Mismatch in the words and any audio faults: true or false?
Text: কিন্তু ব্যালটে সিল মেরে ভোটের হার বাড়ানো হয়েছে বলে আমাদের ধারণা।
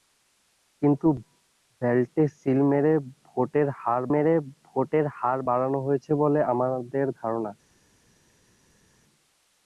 true